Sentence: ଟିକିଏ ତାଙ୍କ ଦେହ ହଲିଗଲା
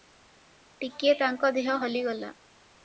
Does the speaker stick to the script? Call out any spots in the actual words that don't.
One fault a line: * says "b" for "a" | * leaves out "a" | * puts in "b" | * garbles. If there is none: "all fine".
all fine